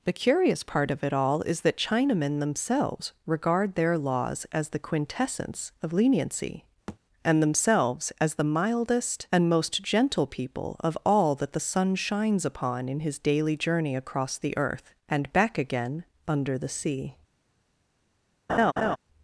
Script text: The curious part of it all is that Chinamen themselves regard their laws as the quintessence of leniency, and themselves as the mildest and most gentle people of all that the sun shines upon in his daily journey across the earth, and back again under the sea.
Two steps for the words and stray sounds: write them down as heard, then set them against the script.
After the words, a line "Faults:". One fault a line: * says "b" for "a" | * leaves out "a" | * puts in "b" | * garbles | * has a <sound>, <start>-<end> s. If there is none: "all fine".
The curious part of it all is that Chinamen themselves regard their laws as the quintessence of leniency, and themselves as the mildest and most gentle people of all that the sun shines upon in his daily journey across the earth, and back again under the sea.
Faults:
* has a thud, 6.9-7.0 s
* has a laugh, 18.5-19.0 s